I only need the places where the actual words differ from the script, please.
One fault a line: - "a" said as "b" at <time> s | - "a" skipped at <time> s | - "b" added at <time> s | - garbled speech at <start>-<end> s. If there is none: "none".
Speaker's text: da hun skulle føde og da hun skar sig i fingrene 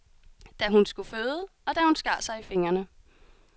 none